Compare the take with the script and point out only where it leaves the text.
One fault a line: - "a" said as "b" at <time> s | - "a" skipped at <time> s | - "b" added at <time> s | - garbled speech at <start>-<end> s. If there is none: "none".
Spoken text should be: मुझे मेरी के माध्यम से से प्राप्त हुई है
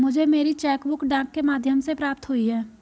- "चेक बुक डाक" added at 0.6 s
- "से" skipped at 1.9 s